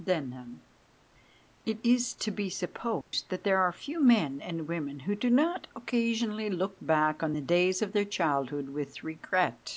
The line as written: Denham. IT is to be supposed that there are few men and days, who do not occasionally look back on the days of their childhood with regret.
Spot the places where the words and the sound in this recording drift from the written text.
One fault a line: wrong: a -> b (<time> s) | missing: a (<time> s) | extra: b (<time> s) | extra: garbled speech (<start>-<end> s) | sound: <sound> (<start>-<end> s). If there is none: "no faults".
sound: dropout (3.0-3.1 s)
wrong: days -> women (4.7 s)